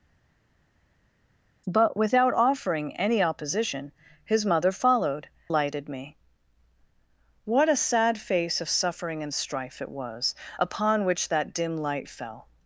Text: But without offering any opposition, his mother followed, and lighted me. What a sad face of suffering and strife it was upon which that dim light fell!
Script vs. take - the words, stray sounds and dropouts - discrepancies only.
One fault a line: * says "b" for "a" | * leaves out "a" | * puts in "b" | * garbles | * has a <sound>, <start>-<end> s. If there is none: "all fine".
* leaves out "and"